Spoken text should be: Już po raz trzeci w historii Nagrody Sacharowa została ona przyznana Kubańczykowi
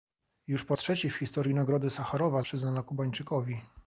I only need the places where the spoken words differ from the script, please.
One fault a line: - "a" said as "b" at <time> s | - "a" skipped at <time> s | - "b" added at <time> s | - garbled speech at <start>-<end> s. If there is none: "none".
- "raz" skipped at 0.8 s
- "została ona" skipped at 2.4 s